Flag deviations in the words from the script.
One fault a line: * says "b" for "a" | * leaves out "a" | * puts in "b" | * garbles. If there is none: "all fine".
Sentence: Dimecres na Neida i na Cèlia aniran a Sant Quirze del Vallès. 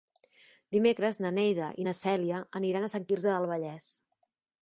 all fine